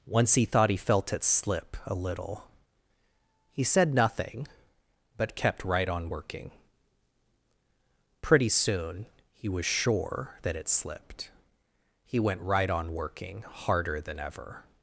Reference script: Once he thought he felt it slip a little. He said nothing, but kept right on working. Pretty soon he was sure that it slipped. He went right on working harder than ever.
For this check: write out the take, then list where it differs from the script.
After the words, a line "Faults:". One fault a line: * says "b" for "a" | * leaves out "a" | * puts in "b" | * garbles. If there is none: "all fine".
Once he thought he felt it slip a little. He said nothing, but kept right on working. Pretty soon he was sure that it slipped. He went right on working harder than ever.
Faults:
all fine